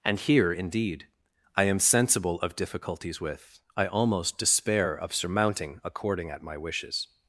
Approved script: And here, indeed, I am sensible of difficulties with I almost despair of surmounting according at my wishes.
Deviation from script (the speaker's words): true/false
false